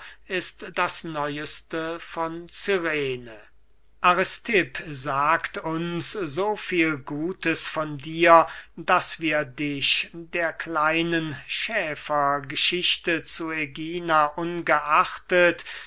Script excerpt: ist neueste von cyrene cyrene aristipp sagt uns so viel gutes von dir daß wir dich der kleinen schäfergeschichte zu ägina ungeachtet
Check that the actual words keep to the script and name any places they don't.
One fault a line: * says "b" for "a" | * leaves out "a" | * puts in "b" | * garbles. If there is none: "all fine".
* puts in "das"
* leaves out "cyrene"